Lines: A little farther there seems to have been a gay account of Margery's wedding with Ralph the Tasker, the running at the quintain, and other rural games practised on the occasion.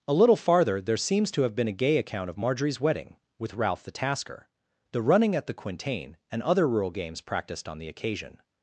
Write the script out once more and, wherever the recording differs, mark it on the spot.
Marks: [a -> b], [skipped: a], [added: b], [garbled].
A little farther there seems to have been a gay account of Margery's wedding with Ralph the Tasker, the running at the quintain, and other rural games practised on the occasion.